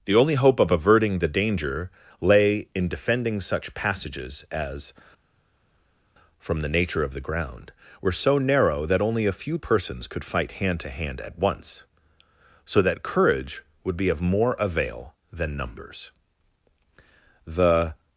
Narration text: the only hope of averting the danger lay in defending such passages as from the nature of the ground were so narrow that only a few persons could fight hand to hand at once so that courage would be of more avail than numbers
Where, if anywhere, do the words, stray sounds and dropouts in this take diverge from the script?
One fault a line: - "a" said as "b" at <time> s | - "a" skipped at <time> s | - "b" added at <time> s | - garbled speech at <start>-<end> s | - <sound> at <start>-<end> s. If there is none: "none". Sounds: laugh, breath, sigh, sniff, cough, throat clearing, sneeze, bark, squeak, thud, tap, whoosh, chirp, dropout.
- "the" added at 17.5 s